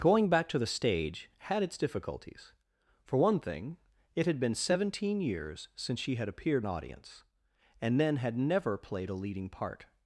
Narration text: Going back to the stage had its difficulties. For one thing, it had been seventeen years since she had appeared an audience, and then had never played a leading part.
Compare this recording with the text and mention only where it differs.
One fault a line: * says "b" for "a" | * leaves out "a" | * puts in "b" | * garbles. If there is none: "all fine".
all fine